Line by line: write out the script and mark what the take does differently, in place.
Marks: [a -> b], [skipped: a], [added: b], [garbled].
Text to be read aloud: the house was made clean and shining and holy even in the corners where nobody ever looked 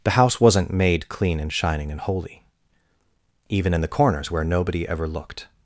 the house [was -> wasn't] made clean and shining and holy even in the corners where nobody ever looked